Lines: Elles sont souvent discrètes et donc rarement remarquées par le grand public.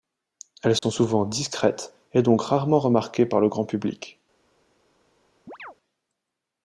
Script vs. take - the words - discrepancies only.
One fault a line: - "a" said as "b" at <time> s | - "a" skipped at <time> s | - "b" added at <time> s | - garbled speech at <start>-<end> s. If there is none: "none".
none